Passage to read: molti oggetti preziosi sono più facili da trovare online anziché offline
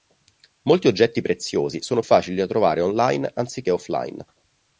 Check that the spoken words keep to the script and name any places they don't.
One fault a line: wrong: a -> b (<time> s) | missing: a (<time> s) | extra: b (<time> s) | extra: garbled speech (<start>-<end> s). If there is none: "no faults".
missing: più (2.0 s)